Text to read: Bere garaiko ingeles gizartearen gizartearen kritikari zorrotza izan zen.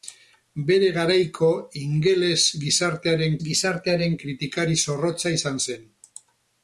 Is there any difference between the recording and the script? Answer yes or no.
no